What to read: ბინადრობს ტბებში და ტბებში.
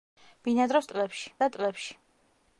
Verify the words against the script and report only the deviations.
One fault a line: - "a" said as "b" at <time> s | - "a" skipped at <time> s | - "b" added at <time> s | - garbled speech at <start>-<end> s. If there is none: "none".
none